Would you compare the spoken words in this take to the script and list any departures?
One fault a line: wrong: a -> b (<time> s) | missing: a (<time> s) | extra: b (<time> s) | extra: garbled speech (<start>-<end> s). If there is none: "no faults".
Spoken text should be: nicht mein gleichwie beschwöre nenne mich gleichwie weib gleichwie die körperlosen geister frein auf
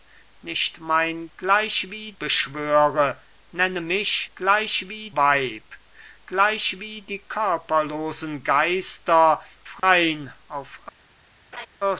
no faults